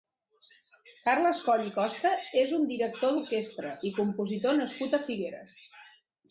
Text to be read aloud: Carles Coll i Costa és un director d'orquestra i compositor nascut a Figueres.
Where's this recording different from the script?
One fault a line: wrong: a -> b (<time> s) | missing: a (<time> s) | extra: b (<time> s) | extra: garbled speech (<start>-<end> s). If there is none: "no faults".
no faults